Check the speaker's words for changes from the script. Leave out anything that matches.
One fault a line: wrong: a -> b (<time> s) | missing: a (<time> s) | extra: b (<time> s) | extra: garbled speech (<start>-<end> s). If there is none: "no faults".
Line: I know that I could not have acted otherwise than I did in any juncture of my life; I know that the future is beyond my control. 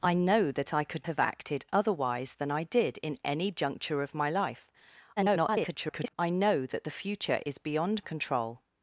missing: not (1.1 s)
extra: garbled speech (5.2-6.1 s)
missing: my (8.0 s)